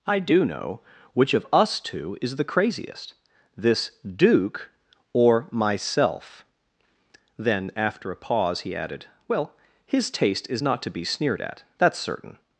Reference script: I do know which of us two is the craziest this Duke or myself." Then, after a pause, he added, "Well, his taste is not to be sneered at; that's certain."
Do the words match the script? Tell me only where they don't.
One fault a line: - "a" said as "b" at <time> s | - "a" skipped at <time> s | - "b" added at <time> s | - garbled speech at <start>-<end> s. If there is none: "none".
none